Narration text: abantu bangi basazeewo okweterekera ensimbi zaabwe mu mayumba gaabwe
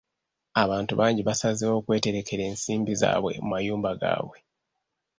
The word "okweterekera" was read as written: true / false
true